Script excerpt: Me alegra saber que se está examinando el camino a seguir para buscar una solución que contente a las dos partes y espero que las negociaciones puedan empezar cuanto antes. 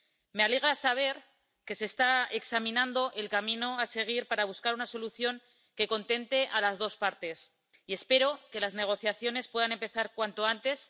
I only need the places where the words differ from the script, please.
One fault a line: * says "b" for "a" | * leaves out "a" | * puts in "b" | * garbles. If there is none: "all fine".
all fine